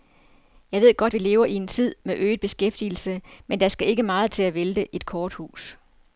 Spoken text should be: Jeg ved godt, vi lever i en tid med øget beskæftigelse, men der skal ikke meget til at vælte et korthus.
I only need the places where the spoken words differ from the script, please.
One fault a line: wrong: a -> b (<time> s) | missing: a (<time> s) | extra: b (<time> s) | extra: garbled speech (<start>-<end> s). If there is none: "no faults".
no faults